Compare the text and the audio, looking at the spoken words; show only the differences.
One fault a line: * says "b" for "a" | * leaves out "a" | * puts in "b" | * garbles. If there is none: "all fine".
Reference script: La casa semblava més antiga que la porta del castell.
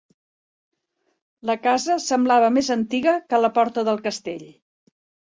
all fine